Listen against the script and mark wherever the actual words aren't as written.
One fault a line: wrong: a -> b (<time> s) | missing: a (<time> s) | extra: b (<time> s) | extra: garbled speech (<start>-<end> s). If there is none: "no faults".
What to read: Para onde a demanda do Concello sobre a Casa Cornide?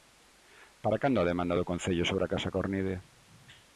wrong: onde -> cando (1.0 s)